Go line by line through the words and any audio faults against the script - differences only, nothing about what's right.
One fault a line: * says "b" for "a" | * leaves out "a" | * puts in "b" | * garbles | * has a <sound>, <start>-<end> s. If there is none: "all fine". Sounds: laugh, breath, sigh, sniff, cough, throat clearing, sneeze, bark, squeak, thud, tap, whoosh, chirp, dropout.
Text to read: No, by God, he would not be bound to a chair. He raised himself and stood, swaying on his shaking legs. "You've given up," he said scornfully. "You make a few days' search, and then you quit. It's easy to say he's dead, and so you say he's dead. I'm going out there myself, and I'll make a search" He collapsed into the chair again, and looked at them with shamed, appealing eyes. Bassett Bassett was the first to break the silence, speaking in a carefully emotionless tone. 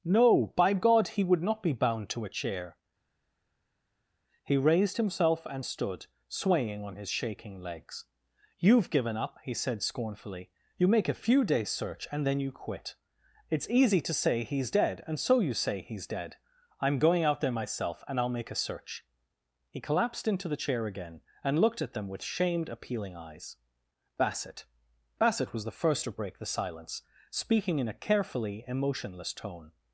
all fine